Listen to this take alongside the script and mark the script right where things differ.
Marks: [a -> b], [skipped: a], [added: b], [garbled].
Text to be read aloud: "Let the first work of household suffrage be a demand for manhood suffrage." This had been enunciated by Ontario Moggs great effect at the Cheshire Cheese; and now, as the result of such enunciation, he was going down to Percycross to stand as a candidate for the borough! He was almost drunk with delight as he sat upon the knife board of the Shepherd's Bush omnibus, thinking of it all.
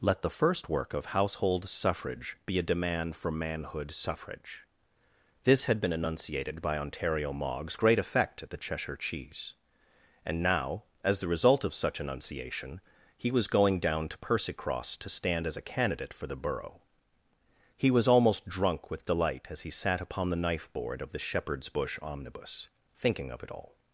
"Let the first work of household suffrage be a demand for manhood suffrage." This had been enunciated by Ontario Moggs great effect at the Cheshire Cheese; and now, as the result of such enunciation, he was going down to Percycross to stand as a candidate for the borough! He was almost drunk with delight as he sat upon the knife board of the Shepherd's Bush omnibus, thinking of it all.